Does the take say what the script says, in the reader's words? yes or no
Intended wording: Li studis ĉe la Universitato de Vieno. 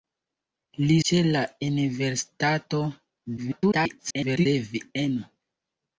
no